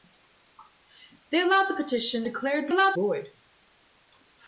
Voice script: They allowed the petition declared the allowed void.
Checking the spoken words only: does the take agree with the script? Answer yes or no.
yes